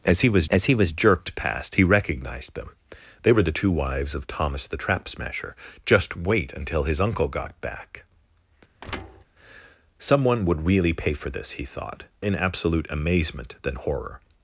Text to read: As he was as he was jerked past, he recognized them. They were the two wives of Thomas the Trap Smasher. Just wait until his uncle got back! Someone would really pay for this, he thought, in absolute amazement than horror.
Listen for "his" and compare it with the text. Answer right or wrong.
right